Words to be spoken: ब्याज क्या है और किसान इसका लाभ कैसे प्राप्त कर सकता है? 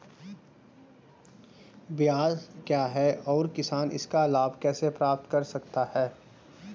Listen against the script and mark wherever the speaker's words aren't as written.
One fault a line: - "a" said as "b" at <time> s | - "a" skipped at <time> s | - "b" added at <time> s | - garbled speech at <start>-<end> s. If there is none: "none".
none